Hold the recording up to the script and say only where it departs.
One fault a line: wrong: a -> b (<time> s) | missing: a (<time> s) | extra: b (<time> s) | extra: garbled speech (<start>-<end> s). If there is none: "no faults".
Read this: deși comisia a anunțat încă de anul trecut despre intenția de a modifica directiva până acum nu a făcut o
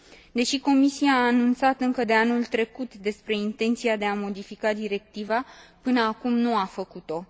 no faults